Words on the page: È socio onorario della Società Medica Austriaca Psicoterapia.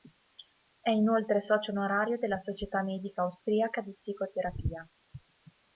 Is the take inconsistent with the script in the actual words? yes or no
yes